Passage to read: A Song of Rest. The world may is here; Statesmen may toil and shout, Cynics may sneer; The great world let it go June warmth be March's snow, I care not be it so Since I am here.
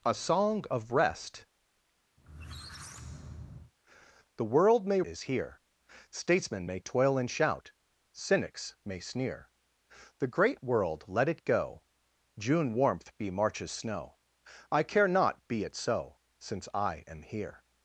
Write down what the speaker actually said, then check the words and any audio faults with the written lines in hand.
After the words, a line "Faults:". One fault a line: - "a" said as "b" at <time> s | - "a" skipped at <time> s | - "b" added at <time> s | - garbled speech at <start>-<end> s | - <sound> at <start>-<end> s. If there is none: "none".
A Song of Rest. The world may is here; Statesmen may toil and shout, Cynics may sneer; The great world let it go June warmth be March's snow, I care not be it so Since I am here.
Faults:
- squeak at 2.2-3.7 s